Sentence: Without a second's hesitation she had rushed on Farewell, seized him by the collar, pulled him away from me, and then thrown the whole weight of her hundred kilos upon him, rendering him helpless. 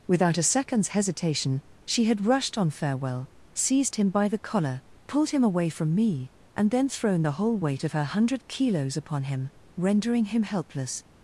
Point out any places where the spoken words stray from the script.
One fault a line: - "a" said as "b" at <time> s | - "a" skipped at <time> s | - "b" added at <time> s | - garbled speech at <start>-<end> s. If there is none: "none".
none